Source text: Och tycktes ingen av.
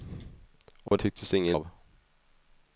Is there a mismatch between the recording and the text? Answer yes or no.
no